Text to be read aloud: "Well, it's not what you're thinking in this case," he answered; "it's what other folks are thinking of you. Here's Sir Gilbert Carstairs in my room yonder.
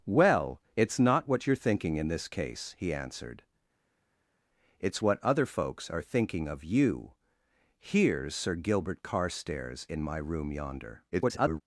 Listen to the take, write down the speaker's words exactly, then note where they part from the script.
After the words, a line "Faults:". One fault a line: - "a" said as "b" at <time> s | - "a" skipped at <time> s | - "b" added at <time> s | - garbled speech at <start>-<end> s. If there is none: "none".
"Well, it's not what you're thinking in this case," he answered; "it's what other folks are thinking of you. Here's Sir Gilbert Carstairs in my room yonder. [garbled]
Faults:
- garbled speech at 11.1-11.6 s